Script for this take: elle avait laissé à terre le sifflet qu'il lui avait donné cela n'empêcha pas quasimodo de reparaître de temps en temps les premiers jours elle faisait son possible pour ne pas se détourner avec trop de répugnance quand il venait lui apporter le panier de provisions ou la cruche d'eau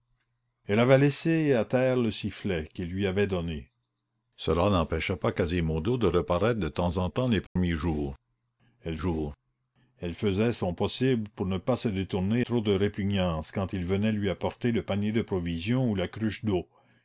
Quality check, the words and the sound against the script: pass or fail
fail